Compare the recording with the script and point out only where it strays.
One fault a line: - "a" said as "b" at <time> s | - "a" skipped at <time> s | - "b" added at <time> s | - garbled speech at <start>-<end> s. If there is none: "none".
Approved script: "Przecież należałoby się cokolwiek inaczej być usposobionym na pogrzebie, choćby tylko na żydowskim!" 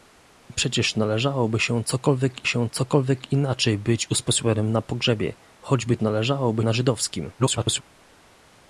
- "się cokolwiek" added at 2.4 s
- "tylko" said as "należałoby" at 6.0 s
- garbled speech at 7.4-7.8 s